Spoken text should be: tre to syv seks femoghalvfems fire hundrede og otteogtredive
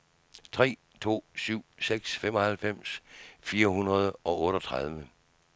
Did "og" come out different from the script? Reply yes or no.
no